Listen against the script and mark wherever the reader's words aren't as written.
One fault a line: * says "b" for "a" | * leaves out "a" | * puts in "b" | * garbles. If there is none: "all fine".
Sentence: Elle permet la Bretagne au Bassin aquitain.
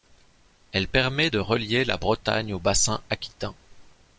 * puts in "de relier"